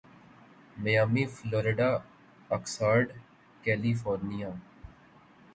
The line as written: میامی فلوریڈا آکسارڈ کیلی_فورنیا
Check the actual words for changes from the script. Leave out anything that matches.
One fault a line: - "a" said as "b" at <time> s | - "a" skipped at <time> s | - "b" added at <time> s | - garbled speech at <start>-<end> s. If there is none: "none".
none